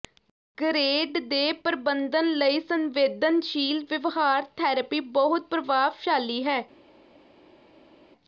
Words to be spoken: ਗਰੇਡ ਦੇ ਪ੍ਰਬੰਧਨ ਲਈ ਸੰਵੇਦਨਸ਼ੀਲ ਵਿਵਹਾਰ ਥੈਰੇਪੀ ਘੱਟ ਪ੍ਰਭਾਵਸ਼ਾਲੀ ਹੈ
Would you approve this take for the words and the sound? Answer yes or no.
no